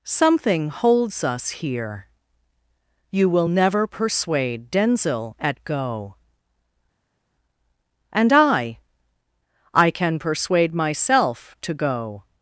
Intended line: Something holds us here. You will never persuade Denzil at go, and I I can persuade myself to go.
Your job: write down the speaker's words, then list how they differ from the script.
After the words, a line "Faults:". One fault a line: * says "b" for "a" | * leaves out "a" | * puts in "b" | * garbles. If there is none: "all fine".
Something holds us here. You will never persuade Denzil at go, and I I can persuade myself to go.
Faults:
all fine